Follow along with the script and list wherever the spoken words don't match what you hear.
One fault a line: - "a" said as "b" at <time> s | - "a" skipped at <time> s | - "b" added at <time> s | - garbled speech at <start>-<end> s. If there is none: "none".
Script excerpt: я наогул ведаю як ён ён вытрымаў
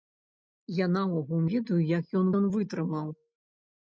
none